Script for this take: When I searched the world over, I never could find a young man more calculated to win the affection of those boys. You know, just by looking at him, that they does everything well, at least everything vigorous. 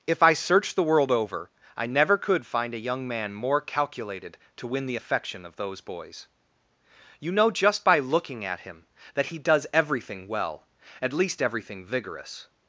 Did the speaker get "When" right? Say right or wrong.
wrong